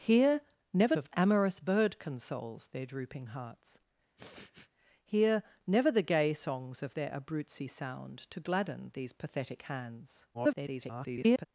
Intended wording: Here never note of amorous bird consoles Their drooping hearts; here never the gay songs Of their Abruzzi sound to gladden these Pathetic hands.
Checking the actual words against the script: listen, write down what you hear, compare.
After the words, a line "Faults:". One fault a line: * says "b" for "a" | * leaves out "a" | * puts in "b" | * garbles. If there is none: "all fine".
Here never of amorous bird consoles Their drooping hearts; here never the gay songs Of their Abruzzi sound to gladden these Pathetic hands. [garbled]
Faults:
* leaves out "note"
* garbles